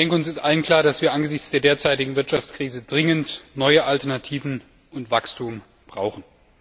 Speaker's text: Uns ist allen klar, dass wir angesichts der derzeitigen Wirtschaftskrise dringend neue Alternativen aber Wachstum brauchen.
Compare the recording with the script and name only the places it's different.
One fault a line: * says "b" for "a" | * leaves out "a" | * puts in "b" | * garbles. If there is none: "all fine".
* says "und" for "aber"